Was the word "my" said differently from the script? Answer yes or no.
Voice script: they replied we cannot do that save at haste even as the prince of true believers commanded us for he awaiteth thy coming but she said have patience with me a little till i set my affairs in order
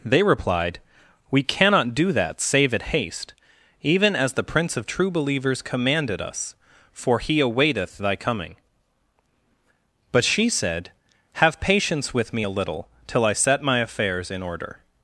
no